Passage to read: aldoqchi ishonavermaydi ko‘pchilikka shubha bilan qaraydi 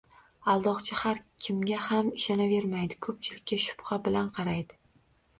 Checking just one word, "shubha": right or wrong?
right